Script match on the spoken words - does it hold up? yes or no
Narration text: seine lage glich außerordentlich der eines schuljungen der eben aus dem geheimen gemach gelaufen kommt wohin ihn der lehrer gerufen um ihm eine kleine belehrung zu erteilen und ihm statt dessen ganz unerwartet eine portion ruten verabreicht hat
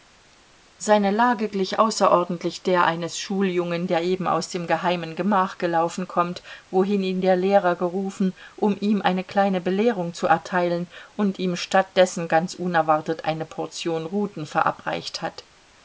yes